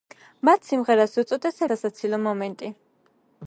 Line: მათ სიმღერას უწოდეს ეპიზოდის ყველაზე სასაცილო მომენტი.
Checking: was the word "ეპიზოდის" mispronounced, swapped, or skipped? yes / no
yes